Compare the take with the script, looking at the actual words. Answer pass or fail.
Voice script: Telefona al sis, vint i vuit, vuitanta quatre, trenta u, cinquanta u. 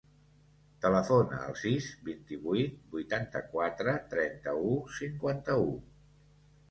pass